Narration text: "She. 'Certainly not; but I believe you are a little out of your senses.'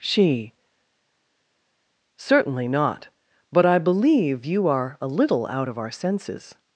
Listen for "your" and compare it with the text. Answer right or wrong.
wrong